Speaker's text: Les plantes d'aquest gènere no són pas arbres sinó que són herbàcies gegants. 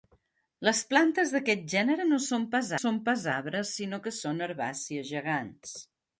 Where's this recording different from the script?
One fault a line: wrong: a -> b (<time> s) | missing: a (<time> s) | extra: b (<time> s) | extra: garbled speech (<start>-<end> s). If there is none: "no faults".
extra: són pas (2.8 s)